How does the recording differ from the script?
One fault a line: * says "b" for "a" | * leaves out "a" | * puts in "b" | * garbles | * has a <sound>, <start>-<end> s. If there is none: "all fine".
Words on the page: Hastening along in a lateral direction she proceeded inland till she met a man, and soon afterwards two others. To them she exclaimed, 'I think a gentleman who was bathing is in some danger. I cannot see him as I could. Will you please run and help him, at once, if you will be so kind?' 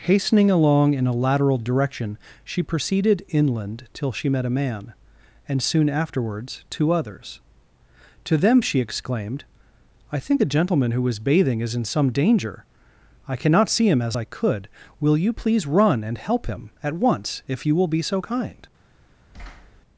* has a thud, 19.3-19.8 s